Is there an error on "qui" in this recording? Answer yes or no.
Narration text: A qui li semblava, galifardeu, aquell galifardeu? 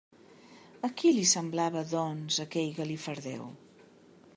no